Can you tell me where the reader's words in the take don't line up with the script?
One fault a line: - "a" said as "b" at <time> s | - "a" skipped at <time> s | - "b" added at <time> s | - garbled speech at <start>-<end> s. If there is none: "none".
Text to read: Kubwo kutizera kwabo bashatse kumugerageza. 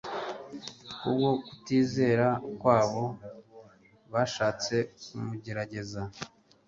none